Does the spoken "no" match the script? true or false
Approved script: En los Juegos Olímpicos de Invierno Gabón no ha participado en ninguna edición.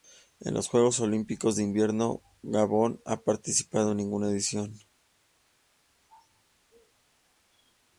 true